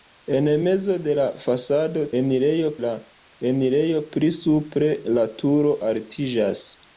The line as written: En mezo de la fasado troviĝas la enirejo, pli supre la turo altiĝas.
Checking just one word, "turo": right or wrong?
right